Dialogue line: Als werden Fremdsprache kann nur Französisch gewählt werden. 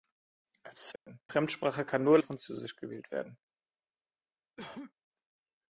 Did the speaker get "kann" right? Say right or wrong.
right